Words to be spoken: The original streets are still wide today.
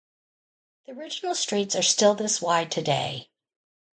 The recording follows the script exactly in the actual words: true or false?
false